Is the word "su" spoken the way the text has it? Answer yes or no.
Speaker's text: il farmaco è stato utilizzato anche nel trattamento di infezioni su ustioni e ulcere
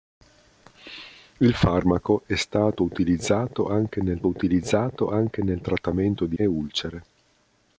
no